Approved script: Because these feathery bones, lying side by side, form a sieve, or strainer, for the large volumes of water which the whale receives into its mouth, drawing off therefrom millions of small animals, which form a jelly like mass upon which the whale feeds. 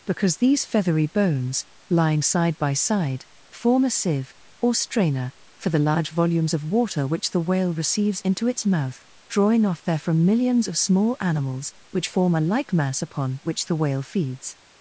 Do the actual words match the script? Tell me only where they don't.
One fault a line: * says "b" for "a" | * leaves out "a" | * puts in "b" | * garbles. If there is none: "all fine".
* leaves out "jelly"